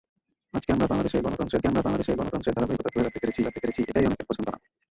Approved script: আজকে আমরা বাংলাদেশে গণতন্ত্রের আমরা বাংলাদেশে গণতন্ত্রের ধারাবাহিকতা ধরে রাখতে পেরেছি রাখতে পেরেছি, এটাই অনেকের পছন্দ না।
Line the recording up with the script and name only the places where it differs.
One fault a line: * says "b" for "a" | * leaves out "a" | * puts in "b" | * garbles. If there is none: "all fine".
all fine